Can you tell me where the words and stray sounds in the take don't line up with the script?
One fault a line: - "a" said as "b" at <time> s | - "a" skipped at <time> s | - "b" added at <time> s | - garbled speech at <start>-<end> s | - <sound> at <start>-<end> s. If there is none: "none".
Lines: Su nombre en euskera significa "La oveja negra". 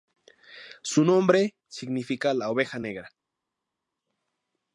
- "en euskera" skipped at 1.6 s